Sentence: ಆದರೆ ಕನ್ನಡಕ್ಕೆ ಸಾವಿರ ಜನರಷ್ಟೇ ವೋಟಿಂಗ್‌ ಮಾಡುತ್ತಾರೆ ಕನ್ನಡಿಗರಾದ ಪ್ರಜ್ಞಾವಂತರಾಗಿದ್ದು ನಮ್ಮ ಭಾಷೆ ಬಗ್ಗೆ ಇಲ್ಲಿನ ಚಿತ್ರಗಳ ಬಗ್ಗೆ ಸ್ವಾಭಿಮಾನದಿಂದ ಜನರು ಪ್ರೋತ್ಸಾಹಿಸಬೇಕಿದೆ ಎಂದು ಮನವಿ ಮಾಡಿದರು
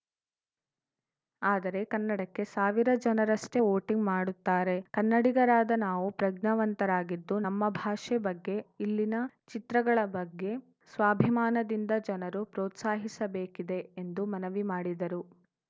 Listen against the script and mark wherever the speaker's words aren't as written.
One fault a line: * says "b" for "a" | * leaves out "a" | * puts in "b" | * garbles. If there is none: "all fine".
* puts in "ನಾವು"